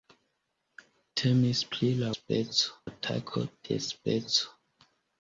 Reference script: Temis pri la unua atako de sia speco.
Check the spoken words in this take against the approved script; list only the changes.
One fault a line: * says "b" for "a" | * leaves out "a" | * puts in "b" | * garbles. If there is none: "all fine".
* says "speco" for "unua"
* leaves out "sia"